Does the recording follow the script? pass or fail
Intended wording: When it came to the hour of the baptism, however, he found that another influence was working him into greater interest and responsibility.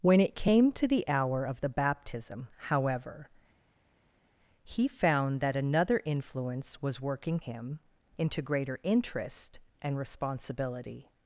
pass